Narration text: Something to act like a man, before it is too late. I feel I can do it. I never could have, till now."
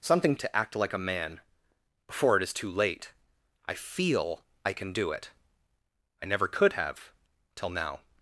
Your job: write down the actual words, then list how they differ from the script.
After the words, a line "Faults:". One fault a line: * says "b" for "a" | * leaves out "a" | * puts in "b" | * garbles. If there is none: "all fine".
Something to act like a man, before it is too late. I feel I can do it. I never could have, till now."
Faults:
all fine